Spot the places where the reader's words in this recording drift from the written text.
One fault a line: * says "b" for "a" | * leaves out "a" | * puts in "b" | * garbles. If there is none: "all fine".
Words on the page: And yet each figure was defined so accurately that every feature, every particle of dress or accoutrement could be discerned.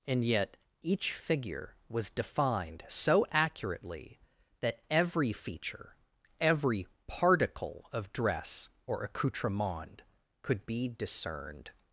all fine